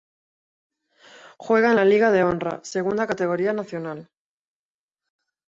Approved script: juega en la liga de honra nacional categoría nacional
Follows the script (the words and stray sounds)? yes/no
no